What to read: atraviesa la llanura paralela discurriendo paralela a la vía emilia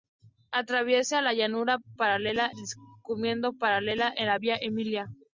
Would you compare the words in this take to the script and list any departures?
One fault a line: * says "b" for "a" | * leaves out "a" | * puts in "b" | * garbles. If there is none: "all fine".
all fine